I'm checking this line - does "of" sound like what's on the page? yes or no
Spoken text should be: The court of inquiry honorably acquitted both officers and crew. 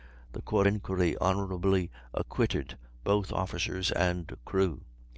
no